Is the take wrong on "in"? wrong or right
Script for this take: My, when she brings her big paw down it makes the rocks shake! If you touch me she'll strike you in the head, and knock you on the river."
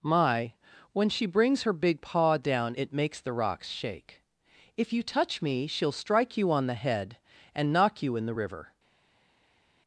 wrong